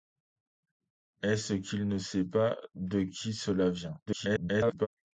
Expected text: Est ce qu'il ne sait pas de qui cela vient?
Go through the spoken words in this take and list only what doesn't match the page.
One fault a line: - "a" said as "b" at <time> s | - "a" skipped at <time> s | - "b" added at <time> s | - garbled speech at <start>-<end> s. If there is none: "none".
- garbled speech at 4.1-4.9 s